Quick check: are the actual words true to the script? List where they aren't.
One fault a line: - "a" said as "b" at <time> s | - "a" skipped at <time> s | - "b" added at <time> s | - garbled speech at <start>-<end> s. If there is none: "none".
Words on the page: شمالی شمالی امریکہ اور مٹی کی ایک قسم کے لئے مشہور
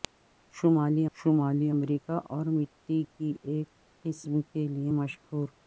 none